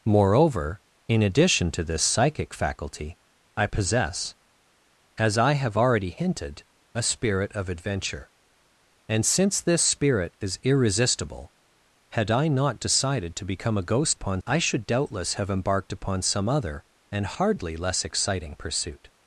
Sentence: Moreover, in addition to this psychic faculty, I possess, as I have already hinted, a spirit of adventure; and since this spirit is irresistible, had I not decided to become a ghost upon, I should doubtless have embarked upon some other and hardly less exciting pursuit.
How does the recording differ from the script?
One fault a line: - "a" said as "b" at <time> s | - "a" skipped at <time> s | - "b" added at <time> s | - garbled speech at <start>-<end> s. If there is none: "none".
none